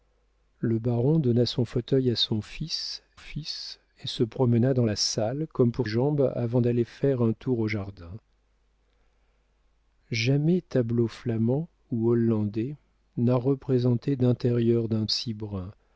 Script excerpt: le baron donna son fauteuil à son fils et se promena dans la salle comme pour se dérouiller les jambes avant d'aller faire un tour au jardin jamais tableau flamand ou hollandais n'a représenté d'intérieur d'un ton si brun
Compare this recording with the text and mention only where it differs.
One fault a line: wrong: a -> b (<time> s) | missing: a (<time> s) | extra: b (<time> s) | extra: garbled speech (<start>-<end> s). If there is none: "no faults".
extra: fils (3.2 s)
missing: se dérouiller les (5.9 s)
missing: ton (15.1 s)